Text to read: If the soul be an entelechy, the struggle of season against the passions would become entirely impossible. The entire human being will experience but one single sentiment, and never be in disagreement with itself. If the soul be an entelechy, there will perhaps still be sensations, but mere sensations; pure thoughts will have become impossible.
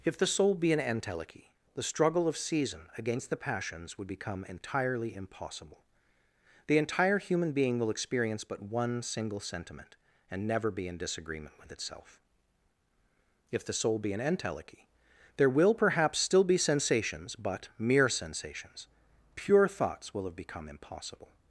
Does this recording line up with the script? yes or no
yes